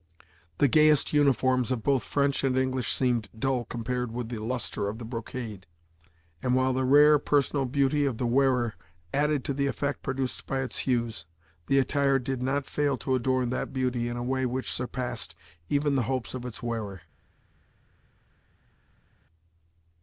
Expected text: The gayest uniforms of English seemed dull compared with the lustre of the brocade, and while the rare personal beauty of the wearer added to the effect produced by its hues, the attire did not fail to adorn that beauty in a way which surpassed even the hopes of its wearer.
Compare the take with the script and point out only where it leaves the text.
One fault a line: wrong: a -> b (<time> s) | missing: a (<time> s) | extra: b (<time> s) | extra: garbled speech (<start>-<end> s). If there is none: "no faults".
extra: both French and (1.8 s)